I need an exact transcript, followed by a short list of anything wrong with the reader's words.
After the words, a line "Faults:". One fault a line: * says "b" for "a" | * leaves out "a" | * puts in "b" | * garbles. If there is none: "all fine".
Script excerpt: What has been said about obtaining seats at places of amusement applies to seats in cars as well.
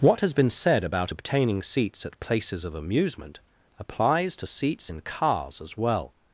What has been said about obtaining seats at places of amusement applies to seats in cars as well.
Faults:
all fine